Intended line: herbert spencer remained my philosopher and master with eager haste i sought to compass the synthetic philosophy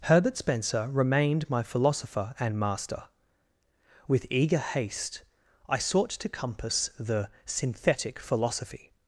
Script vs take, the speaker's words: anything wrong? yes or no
no